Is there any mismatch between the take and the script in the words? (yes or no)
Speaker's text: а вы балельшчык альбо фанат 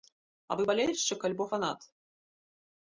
no